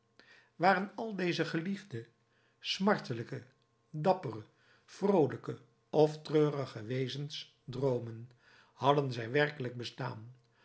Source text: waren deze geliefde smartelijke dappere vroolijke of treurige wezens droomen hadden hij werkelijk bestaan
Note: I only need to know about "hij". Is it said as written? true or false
false